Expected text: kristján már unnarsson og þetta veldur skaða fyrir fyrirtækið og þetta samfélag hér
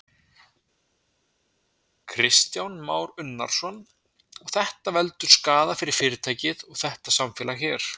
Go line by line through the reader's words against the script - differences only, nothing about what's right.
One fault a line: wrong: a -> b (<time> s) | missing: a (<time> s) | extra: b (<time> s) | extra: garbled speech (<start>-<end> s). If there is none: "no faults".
no faults